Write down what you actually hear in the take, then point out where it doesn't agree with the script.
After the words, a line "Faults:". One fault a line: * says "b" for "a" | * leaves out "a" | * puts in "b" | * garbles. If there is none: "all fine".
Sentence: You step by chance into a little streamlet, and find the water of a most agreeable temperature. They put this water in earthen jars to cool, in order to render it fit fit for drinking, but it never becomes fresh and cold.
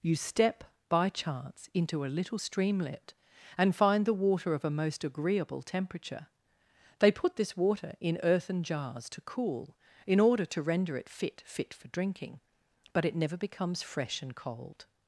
You step by chance into a little streamlet, and find the water of a most agreeable temperature. They put this water in earthen jars to cool, in order to render it fit fit for drinking, but it never becomes fresh and cold.
Faults:
all fine